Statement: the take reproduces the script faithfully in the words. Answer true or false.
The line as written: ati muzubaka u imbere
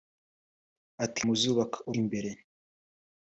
true